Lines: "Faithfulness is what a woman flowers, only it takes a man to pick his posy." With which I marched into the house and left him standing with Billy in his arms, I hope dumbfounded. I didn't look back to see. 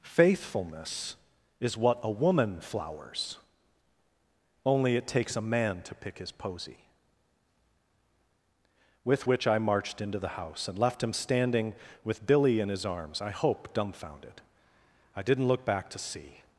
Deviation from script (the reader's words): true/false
false